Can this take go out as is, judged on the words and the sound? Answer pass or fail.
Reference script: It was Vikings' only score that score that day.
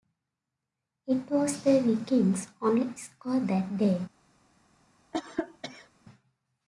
fail